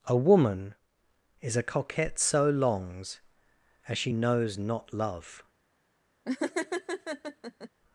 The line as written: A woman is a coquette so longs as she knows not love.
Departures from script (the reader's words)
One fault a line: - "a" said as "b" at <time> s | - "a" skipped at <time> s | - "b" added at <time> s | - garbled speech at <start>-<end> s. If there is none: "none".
none